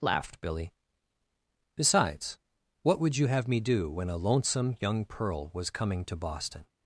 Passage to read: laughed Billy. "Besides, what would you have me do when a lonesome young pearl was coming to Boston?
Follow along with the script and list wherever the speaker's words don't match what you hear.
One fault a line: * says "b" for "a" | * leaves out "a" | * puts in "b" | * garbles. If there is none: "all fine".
all fine